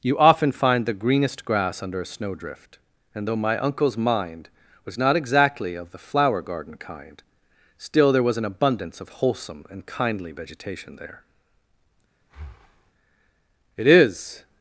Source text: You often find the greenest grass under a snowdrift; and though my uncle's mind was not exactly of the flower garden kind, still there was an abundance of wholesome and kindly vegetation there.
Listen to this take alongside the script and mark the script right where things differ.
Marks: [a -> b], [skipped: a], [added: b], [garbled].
You often find the greenest grass under a snowdrift; and though my uncle's mind was not exactly of the flower garden kind, still there was an abundance of wholesome and kindly vegetation there. [added: It is]